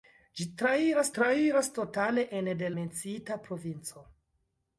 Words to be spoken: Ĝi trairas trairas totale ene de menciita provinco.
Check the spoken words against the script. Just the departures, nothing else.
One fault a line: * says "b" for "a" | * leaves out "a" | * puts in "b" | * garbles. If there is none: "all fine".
all fine